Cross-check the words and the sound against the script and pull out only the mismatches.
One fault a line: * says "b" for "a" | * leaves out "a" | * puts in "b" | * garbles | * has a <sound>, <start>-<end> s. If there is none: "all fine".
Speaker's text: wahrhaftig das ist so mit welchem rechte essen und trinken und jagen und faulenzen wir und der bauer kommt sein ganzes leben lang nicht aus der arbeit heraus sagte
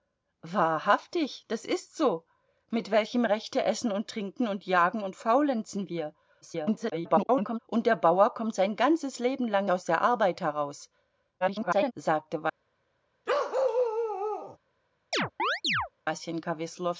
* garbles
* leaves out "nicht"
* garbles
* has a bark, 13.3-14.6 s
* has a chirp, 15.1-15.9 s